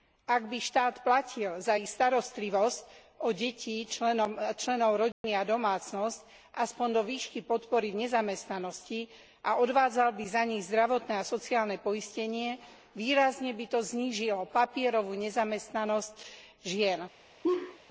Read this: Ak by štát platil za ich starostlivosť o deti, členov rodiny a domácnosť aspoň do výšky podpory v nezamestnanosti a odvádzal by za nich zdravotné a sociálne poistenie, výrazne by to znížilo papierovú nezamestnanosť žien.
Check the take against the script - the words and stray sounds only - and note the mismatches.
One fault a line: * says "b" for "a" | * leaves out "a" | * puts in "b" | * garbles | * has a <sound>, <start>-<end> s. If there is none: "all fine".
* has a dropout, 5.1-5.2 s
* has a laugh, 17.4-17.8 s